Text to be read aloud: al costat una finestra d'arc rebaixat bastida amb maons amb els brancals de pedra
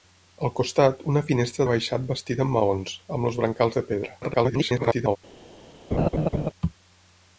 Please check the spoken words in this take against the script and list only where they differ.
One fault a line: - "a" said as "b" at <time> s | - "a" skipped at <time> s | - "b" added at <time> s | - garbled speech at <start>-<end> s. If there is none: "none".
- "d'arc" skipped at 1.7 s
- garbled speech at 4.2-5.2 s